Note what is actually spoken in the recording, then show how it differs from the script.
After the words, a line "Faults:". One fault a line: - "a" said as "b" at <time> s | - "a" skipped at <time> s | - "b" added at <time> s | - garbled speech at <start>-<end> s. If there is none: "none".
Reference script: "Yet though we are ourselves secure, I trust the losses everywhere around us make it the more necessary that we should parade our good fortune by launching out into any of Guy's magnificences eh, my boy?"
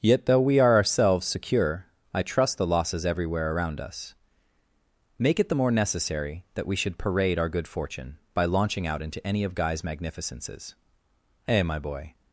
"Yet though we are ourselves secure, I trust the losses everywhere around us make it the more necessary that we should parade our good fortune by launching out into any of Guy's magnificences eh, my boy?"
Faults:
none